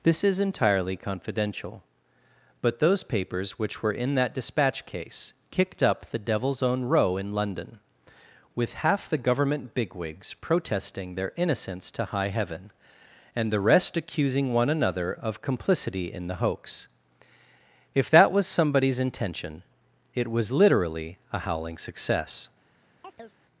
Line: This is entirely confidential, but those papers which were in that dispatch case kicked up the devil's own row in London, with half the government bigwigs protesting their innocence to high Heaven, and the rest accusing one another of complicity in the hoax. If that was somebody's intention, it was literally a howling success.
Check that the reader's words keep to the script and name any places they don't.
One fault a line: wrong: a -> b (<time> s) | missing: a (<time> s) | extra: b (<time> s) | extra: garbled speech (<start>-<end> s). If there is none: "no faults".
no faults